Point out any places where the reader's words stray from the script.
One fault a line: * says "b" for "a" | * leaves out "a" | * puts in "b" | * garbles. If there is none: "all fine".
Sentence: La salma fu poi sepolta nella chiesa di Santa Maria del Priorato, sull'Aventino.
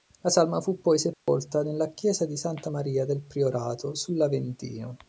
all fine